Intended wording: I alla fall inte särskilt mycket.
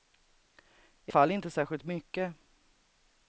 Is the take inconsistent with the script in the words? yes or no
yes